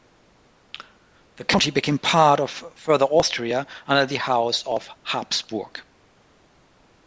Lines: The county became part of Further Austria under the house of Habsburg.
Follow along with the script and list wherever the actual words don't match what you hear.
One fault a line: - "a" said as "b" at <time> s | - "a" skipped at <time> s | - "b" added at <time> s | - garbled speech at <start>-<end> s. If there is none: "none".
none